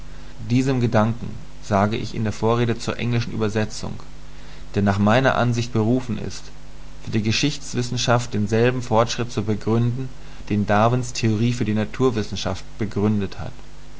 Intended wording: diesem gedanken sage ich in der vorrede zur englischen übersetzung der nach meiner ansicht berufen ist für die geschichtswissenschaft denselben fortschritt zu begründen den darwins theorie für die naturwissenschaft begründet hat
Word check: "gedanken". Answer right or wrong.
right